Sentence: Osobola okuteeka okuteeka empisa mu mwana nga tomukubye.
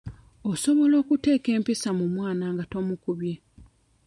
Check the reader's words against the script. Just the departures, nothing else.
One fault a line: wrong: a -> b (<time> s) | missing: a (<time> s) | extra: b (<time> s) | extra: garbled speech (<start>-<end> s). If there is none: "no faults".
missing: okuteeka (1.5 s)